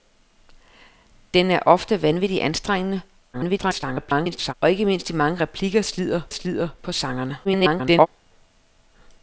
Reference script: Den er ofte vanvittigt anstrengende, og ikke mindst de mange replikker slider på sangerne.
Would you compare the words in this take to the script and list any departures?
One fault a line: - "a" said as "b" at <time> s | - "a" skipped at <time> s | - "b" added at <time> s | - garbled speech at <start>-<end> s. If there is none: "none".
- garbled speech at 3.3-4.5 s
- "slider" added at 6.3 s
- garbled speech at 7.4-8.1 s